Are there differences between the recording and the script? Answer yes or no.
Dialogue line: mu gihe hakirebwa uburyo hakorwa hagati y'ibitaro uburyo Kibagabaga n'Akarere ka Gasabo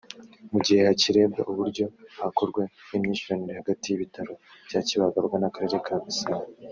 yes